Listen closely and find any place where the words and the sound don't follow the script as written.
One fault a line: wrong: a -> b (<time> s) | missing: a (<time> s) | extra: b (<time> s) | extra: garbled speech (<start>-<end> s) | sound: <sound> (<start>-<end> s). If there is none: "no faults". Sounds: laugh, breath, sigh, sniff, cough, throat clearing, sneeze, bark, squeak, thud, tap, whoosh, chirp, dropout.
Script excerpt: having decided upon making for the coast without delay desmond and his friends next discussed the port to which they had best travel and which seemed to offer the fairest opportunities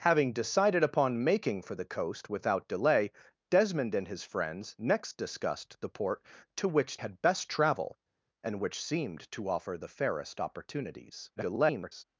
missing: they (7.0 s)
extra: garbled speech (11.4-12.0 s)